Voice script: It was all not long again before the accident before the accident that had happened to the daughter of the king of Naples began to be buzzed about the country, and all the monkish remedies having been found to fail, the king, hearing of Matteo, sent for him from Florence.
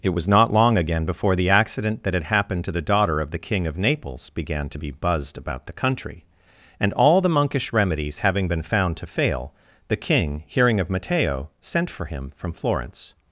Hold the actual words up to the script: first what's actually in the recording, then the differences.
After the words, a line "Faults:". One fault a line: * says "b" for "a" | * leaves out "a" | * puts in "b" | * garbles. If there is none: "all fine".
It was not long again before the accident that had happened to the daughter of the king of Naples began to be buzzed about the country, and all the monkish remedies having been found to fail, the king, hearing of Matteo, sent for him from Florence.
Faults:
* leaves out "all"
* leaves out "before the accident"